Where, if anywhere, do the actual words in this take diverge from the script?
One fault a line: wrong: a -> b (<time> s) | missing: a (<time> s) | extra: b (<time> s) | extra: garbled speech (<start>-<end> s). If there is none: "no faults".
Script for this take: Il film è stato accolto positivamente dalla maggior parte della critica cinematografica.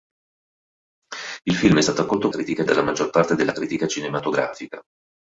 wrong: positivamente -> critica (2.3 s)